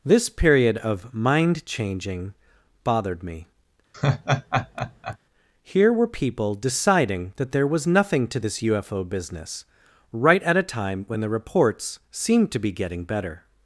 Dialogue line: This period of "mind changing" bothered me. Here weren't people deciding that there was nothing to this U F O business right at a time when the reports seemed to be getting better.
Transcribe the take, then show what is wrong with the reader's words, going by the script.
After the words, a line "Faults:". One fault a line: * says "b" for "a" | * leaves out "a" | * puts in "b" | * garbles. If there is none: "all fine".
This period of "mind changing" bothered me. Here were people deciding that there was nothing to this U F O business right at a time when the reports seemed to be getting better.
Faults:
* says "were" for "weren't"